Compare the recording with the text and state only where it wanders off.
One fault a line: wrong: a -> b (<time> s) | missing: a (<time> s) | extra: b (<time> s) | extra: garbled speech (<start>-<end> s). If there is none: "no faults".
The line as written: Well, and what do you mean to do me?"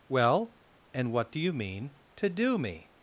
no faults